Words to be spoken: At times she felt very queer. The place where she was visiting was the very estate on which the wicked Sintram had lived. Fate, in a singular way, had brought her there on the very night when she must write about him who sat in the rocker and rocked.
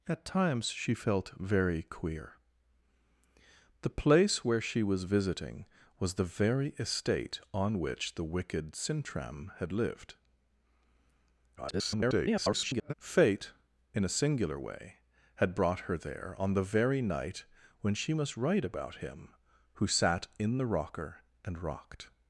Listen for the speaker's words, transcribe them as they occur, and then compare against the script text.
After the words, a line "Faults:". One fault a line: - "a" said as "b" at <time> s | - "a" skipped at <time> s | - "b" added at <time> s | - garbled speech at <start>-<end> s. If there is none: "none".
At times she felt very queer. The place where she was visiting was the very estate on which the wicked Sintram had lived. [garbled] Fate, in a singular way, had brought her there on the very night when she must write about him who sat in the rocker and rocked.
Faults:
- garbled speech at 11.6-12.9 s